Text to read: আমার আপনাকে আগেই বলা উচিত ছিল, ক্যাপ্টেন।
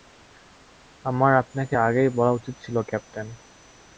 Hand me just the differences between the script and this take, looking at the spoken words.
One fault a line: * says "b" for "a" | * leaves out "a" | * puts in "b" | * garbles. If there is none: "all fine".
all fine